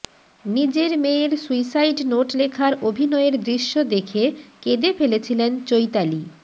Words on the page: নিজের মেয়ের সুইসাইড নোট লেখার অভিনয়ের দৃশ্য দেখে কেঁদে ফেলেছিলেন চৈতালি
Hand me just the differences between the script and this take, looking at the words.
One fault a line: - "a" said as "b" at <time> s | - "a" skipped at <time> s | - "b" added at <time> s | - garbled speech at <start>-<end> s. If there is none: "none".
none